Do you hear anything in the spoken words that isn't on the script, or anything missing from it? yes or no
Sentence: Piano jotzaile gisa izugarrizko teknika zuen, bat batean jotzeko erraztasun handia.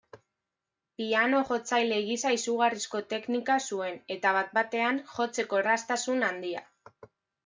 yes